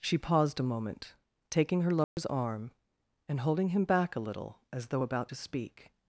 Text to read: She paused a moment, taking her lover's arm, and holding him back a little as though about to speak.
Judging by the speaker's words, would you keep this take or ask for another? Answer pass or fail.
pass